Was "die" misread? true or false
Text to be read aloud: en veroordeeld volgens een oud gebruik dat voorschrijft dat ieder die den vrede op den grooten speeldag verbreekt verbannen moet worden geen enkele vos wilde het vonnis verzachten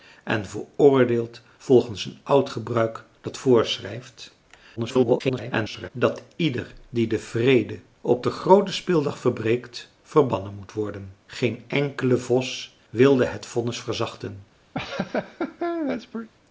false